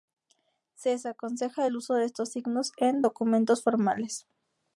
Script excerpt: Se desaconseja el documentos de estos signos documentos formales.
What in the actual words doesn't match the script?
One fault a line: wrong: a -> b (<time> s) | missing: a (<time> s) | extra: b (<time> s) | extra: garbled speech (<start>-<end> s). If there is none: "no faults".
wrong: documentos -> uso (1.7 s)
extra: en (2.8 s)